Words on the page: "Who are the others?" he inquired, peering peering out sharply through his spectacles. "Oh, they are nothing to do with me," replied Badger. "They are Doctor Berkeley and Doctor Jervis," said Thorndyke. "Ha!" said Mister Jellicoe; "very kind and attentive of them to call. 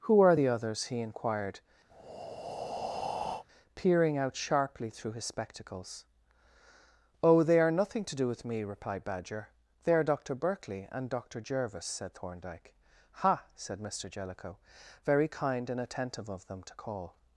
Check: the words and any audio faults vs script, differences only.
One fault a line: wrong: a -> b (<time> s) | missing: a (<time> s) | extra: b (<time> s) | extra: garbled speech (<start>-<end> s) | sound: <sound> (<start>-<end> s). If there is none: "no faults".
sound: breath (1.9-3.4 s)
missing: peering (4.2 s)